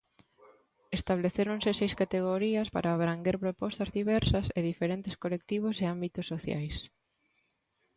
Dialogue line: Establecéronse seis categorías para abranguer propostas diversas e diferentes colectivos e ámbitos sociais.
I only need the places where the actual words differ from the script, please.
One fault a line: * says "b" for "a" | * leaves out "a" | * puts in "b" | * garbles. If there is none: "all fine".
all fine